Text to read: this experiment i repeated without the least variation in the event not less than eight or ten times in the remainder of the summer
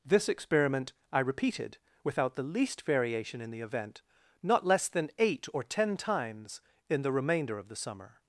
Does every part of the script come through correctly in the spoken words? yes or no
yes